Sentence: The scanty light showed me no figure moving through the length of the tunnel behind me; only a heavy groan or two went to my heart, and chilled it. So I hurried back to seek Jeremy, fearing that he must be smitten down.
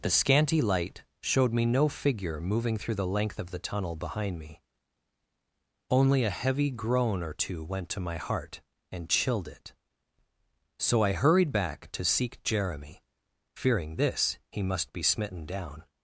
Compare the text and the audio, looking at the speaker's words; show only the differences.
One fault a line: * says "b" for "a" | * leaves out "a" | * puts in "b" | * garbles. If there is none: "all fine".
* says "this" for "that"